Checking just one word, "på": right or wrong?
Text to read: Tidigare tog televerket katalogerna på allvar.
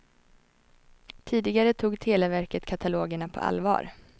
right